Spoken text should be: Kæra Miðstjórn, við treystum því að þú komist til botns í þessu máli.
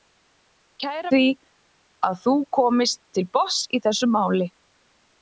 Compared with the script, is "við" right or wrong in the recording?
wrong